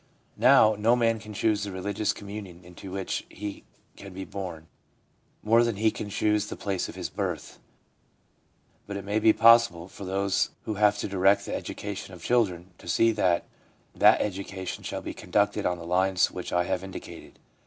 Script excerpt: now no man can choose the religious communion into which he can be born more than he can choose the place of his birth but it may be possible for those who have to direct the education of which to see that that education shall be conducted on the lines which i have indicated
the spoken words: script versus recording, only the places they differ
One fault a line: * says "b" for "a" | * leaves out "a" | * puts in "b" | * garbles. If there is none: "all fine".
* says "children" for "which"